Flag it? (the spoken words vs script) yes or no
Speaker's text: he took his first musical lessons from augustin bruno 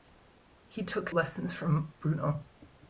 yes